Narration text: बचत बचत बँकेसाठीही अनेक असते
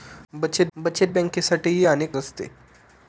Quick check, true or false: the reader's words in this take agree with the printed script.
true